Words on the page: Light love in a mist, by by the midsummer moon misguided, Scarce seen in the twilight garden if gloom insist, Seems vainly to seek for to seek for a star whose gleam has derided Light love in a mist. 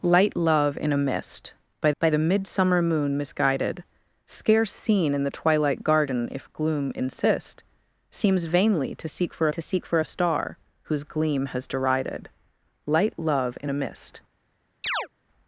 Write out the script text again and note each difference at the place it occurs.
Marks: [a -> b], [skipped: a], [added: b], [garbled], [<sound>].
Light love in a mist, by by the midsummer moon misguided, Scarce seen in the twilight garden if gloom insist, Seems vainly to seek for to seek for a star whose gleam has derided Light love in a mist. [chirp]